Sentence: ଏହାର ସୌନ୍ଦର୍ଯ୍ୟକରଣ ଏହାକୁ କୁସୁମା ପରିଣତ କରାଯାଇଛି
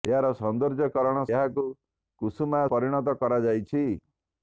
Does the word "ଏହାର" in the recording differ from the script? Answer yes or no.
no